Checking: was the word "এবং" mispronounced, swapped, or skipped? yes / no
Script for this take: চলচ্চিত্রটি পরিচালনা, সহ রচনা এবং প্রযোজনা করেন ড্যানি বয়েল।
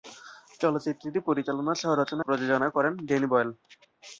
yes